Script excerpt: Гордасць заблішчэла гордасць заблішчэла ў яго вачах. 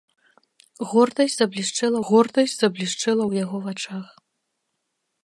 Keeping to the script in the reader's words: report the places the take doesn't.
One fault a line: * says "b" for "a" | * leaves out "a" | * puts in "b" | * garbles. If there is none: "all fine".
all fine